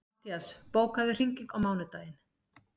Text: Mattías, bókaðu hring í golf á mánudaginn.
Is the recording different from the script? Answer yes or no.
yes